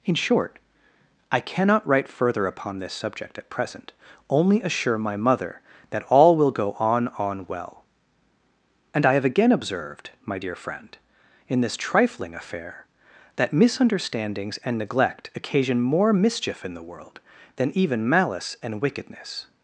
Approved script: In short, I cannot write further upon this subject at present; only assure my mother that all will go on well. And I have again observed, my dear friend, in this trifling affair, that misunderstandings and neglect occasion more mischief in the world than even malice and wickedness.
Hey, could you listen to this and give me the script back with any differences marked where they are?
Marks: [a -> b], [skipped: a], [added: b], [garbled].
In short, I cannot write further upon this subject at present; only assure my mother that all will go on [added: on] well. And I have again observed, my dear friend, in this trifling affair, that misunderstandings and neglect occasion more mischief in the world than even malice and wickedness.